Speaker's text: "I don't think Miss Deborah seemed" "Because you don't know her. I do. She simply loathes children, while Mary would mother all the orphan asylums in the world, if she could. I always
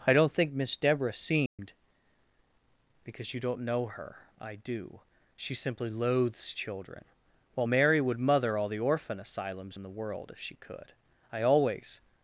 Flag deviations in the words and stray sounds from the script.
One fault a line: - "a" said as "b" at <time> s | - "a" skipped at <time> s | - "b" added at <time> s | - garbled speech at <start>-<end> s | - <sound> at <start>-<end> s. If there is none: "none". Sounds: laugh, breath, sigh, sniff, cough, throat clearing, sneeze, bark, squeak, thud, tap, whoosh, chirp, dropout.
- dropout at 1.5-1.6 s